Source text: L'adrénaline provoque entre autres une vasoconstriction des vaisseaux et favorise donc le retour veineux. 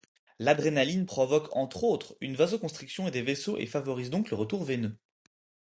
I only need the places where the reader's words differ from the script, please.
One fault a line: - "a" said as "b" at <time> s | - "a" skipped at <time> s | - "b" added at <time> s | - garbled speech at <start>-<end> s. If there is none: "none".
none